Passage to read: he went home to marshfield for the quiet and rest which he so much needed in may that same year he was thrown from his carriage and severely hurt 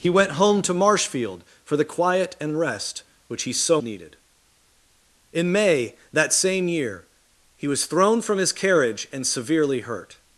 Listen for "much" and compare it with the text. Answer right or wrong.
wrong